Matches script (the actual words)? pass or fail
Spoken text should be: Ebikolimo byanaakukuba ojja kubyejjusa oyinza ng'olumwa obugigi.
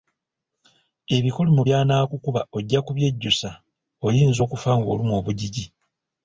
fail